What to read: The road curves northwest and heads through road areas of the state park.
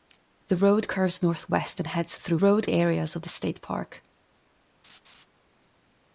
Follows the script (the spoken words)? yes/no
yes